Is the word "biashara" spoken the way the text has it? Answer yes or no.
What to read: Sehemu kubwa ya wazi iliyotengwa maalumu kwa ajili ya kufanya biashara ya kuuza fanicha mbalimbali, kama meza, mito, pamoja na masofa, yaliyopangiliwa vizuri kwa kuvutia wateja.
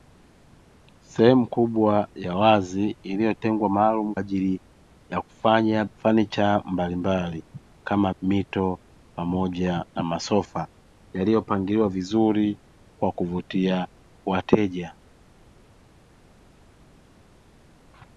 no